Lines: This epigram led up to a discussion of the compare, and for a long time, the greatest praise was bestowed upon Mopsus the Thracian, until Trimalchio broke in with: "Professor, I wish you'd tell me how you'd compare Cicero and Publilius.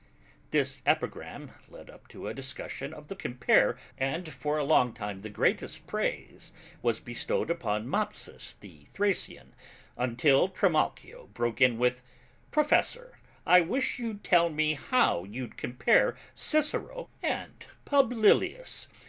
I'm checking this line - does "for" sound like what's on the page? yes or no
yes